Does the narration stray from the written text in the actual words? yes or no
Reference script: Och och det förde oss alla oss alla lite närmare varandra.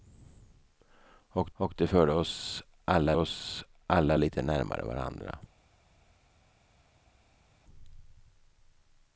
no